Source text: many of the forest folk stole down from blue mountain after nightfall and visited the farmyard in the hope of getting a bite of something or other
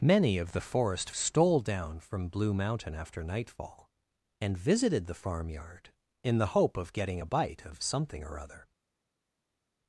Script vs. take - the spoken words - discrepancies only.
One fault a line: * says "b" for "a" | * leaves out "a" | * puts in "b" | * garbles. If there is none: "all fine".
* leaves out "folk"